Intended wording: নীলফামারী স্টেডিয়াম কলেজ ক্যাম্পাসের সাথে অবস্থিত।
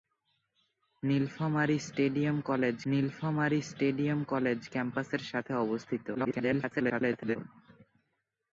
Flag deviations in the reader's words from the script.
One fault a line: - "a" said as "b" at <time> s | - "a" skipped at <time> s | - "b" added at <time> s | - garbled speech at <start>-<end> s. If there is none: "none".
- "নীলফামারী স্টেডিয়াম কলেজ" added at 2.9 s
- garbled speech at 6.1-7.4 s